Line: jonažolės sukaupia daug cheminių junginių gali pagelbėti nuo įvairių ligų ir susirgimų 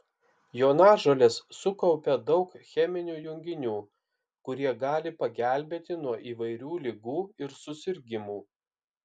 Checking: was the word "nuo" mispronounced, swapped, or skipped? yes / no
no